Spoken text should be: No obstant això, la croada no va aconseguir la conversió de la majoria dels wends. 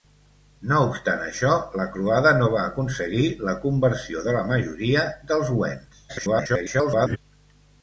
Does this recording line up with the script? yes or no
no